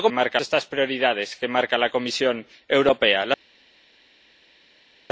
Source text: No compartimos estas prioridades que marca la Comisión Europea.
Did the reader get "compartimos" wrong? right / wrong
wrong